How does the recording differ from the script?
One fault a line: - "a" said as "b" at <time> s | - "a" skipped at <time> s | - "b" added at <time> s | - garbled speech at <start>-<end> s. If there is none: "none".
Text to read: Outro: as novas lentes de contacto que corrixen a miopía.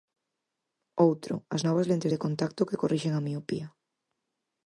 none